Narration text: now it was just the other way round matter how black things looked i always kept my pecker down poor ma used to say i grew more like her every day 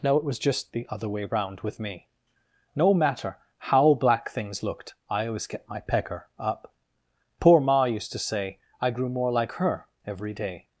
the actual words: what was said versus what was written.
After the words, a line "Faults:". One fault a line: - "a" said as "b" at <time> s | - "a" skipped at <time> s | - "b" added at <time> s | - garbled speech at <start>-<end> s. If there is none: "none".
now it was just the other way round with me no matter how black things looked i always kept my pecker up poor ma used to say i grew more like her every day
Faults:
- "with me no" added at 1.6 s
- "down" said as "up" at 6.4 s